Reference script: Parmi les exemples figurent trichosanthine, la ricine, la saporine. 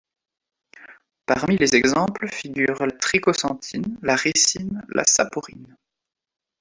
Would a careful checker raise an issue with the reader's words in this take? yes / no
no